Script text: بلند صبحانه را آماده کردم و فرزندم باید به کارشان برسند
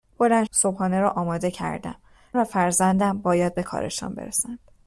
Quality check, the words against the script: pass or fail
pass